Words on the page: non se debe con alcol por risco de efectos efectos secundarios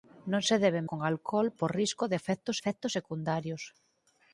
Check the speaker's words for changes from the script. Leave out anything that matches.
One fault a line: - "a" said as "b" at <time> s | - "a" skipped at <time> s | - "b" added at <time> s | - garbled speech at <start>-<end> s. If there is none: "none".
none